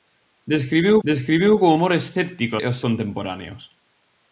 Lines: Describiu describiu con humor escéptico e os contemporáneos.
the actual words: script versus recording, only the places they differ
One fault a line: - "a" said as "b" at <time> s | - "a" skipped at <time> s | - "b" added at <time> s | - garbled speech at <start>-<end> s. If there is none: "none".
none